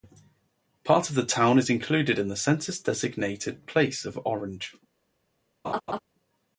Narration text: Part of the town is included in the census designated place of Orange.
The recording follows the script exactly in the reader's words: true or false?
true